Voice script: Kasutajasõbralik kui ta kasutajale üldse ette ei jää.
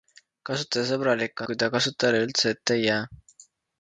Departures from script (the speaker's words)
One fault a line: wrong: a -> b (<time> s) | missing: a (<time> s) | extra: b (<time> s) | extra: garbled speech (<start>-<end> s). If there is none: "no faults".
no faults